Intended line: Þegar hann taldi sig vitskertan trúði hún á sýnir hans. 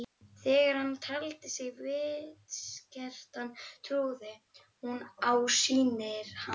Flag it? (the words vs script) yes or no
no